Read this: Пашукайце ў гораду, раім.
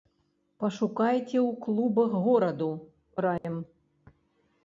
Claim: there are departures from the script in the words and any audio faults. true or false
true